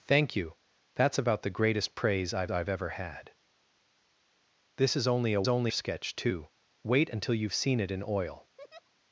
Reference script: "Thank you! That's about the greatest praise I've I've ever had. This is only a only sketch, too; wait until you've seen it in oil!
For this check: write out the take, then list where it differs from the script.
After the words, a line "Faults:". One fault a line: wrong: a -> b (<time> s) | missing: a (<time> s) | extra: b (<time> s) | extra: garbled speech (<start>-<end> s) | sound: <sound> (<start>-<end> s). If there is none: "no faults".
"Thank you! That's about the greatest praise I've I've ever had. This is only a only sketch, too; wait until you've seen it in oil!
Faults:
sound: laugh (8.6-8.9 s)